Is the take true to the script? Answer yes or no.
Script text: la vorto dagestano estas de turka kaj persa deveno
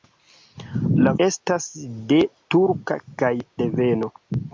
no